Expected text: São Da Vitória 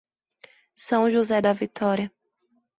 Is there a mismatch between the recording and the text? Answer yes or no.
yes